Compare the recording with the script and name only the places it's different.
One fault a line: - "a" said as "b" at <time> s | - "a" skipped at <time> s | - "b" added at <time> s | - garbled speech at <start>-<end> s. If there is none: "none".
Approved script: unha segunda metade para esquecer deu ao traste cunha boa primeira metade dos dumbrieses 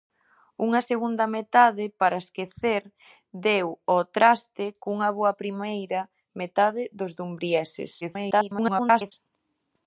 - garbled speech at 8.0-9.1 s